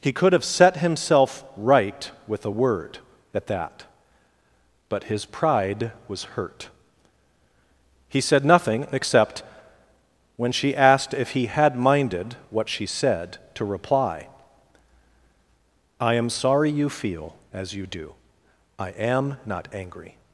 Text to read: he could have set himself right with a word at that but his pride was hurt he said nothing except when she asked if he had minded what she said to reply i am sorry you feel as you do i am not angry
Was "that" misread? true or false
false